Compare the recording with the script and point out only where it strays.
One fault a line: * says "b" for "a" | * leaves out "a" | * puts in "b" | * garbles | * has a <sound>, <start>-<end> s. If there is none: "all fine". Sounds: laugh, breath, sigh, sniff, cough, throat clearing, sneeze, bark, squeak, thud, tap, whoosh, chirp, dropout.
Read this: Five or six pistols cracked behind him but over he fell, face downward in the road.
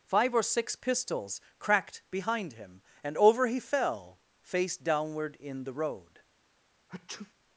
* says "and" for "but"
* has a sneeze, 6.9-7.3 s